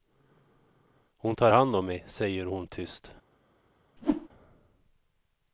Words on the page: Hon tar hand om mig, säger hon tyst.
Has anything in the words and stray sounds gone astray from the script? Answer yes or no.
yes